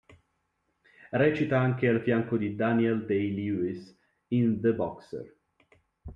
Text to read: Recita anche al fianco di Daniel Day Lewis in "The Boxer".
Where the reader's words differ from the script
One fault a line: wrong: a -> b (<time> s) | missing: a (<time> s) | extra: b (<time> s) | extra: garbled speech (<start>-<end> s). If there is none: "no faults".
no faults